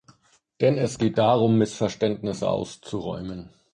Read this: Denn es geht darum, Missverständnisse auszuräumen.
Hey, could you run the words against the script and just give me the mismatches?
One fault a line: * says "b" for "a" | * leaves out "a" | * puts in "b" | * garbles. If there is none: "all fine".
all fine